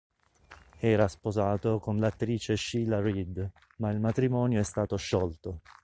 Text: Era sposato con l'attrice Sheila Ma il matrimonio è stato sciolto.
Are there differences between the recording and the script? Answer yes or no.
yes